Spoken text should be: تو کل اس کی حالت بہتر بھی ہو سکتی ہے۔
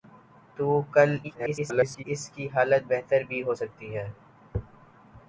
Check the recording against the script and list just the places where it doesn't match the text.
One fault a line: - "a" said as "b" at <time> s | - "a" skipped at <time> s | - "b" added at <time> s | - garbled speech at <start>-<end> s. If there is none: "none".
- garbled speech at 1.2-2.0 s